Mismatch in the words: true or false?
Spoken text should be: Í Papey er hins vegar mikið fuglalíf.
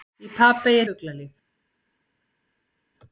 true